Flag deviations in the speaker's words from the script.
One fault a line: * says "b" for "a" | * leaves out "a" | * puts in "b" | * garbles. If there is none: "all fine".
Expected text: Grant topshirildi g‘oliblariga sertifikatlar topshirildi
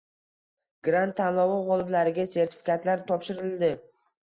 * says "tanlovi" for "topshirildi"